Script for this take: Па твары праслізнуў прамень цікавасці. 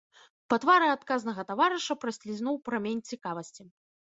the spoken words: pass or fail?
fail